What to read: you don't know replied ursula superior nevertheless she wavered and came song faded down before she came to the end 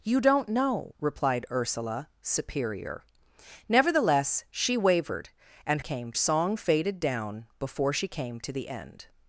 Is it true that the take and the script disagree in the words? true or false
false